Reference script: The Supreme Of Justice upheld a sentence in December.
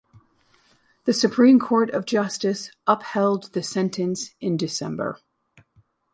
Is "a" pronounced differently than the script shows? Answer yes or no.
yes